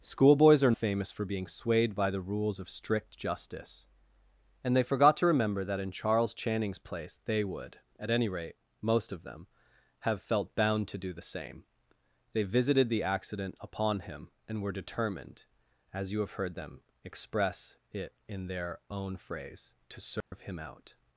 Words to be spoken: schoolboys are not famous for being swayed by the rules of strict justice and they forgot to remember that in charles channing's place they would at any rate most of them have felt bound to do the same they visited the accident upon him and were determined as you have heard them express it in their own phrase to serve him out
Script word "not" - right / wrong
wrong